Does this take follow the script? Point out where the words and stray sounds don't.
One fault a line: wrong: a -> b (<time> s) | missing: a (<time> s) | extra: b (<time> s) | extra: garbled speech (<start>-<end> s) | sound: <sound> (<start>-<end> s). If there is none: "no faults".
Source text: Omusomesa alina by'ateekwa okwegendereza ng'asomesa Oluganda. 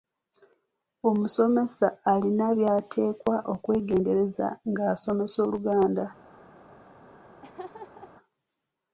sound: laugh (7.4-8.1 s)